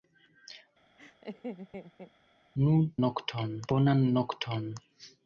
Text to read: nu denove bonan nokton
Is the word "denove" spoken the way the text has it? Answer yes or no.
no